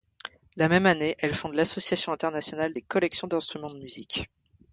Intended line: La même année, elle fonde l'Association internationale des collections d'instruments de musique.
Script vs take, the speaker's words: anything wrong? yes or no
no